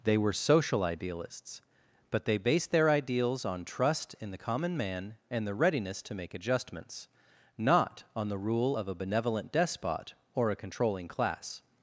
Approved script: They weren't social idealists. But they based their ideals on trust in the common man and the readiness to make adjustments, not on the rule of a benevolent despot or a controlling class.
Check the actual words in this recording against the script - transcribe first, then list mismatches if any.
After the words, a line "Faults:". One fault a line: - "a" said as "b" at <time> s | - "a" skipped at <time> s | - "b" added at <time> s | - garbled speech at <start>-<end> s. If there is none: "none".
They were social idealists. But they based their ideals on trust in the common man and the readiness to make adjustments, not on the rule of a benevolent despot or a controlling class.
Faults:
- "weren't" said as "were" at 0.2 s